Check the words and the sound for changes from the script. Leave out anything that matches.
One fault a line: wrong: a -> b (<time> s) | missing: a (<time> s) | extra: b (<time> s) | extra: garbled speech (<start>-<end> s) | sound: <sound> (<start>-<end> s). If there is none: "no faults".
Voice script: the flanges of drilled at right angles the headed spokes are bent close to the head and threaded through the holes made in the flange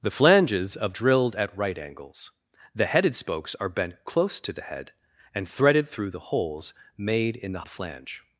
no faults